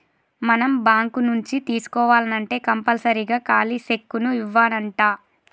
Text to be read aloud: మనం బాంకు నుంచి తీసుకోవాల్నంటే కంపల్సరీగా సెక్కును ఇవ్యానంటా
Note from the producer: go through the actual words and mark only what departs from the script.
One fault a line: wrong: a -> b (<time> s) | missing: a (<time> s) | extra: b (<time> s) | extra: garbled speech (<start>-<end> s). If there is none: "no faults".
extra: ఖాలీ (3.5 s)